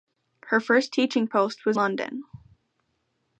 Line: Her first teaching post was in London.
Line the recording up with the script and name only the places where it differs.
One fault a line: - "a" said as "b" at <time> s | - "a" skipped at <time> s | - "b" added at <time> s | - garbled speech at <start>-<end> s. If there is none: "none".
- "in" skipped at 1.8 s